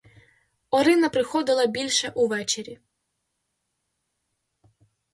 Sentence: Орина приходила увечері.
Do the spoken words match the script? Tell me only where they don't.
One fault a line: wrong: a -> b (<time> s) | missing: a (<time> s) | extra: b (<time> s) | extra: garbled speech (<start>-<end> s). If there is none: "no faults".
extra: більше (1.7 s)